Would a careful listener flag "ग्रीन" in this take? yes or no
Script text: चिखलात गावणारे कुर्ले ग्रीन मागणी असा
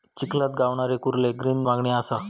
no